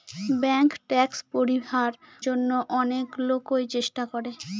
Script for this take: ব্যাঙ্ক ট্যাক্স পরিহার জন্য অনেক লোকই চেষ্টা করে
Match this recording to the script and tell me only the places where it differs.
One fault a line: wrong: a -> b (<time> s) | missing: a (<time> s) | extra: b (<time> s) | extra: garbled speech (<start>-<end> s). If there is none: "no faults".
no faults